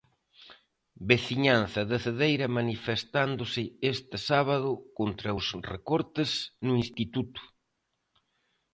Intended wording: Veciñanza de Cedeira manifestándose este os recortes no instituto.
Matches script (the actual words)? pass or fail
fail